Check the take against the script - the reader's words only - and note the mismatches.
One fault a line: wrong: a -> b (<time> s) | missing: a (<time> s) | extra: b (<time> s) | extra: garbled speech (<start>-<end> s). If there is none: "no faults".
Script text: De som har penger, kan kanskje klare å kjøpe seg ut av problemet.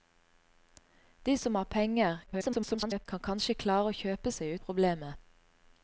extra: garbled speech (2.3-3.1 s)
missing: ut (4.5 s)